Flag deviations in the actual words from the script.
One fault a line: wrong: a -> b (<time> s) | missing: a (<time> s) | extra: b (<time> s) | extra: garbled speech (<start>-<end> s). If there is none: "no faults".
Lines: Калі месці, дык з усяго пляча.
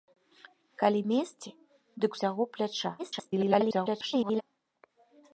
missing: з (2.1 s)
extra: garbled speech (3.0-4.4 s)